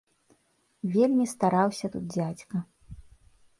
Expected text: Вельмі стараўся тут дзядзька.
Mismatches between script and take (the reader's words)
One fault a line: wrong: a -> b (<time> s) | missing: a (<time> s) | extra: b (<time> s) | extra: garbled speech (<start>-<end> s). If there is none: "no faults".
no faults